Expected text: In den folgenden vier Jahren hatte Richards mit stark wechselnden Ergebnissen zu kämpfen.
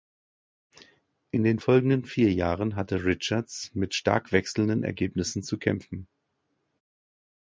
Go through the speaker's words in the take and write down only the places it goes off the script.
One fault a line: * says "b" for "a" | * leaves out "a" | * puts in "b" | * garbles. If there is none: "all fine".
all fine